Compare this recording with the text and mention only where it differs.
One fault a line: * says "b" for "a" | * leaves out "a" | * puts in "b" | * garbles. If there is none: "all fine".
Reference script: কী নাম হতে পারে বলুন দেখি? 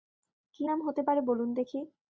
all fine